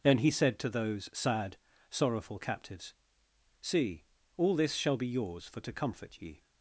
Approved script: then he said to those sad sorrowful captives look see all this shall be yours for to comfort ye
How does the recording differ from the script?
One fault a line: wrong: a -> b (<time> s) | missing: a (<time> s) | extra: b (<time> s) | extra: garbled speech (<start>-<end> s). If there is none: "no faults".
missing: look (2.9 s)